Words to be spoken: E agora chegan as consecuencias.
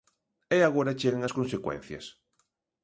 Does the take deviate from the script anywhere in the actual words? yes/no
no